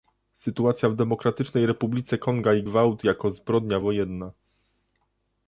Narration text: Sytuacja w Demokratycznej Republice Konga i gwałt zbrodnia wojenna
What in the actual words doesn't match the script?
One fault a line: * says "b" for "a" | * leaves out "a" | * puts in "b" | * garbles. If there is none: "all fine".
* puts in "jako"